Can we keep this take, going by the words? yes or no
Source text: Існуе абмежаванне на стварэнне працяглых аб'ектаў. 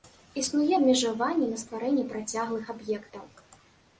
yes